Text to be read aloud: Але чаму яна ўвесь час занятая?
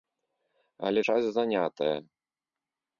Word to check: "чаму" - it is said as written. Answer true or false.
false